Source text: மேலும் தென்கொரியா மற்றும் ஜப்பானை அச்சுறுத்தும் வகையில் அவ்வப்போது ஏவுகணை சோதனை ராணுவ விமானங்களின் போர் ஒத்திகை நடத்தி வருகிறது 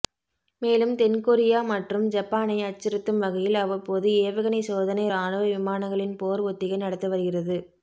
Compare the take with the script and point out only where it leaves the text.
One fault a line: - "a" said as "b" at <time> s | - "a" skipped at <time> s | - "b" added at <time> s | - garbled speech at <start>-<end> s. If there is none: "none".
none